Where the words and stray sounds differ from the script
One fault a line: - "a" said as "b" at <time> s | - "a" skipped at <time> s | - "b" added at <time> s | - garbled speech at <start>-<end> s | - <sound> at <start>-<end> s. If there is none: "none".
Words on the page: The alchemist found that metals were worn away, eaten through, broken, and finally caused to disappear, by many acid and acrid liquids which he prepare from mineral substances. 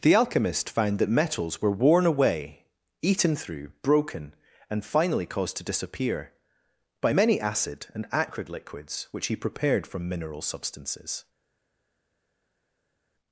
- "prepare" said as "prepared" at 9.3 s